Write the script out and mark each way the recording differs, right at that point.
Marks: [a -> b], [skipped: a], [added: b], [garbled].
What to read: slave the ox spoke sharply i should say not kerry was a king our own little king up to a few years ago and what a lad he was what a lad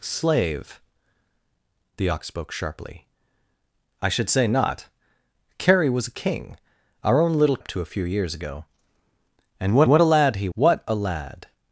slave the ox spoke sharply i should say not kerry was a king our own little [skipped: king] up to a few years ago and what [added: what] a lad he [skipped: was] what a lad